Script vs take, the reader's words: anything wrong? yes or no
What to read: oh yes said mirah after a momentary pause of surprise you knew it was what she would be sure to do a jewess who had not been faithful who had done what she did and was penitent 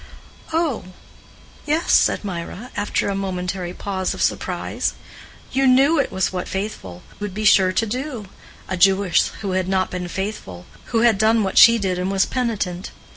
yes